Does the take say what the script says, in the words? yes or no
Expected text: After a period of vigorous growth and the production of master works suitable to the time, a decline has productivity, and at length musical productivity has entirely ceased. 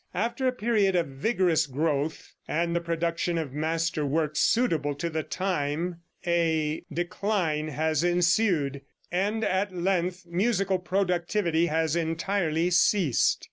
no